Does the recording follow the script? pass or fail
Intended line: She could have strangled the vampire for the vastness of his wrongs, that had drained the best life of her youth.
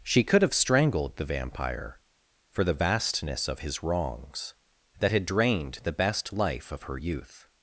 pass